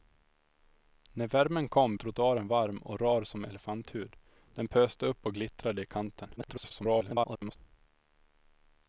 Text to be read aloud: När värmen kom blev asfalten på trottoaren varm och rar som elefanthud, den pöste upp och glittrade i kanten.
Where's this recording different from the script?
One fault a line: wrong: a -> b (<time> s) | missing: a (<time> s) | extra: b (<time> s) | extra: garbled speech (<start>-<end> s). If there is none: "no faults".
missing: blev asfalten på (1.9 s)
extra: garbled speech (6.4-7.6 s)